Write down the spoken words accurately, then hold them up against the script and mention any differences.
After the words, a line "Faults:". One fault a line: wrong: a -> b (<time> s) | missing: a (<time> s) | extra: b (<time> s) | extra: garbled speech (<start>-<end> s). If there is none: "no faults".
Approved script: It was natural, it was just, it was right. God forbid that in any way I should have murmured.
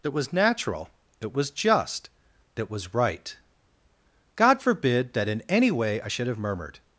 That was natural, that was just, that was right. God forbid that in any way I should have murmured.
Faults:
wrong: It -> That (0.0 s)
wrong: it -> that (1.2 s)
wrong: it -> that (2.5 s)